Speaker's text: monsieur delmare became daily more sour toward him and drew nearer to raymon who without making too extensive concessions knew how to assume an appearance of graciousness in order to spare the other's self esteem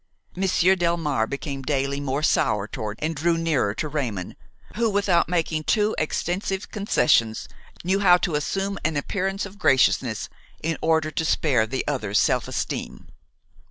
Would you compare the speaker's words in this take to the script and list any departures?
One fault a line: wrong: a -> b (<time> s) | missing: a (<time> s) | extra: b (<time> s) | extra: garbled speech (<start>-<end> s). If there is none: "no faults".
missing: him (3.0 s)